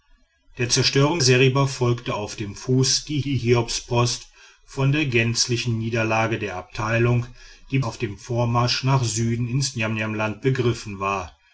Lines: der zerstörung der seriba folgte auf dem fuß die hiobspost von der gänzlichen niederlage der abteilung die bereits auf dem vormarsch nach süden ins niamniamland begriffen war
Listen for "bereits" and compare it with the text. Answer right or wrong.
wrong